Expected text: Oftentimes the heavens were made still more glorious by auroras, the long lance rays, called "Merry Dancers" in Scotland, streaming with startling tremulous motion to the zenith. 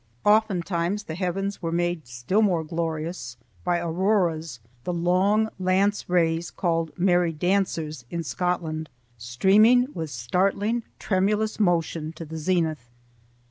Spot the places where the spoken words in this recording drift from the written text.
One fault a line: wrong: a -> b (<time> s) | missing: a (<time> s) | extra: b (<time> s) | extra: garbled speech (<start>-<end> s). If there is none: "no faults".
no faults